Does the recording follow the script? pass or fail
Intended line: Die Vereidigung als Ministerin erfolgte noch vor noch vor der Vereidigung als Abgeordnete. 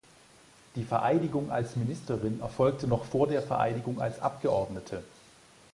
fail